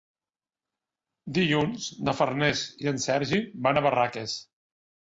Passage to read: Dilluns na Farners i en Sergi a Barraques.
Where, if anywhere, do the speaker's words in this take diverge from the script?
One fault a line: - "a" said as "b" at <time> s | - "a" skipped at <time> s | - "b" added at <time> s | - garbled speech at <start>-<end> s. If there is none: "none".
- "van" added at 3.7 s